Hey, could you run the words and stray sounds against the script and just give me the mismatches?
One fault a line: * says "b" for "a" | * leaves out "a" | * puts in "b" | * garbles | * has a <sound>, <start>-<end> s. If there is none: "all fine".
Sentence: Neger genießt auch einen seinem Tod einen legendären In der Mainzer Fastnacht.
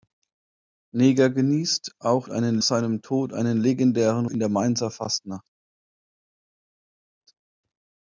all fine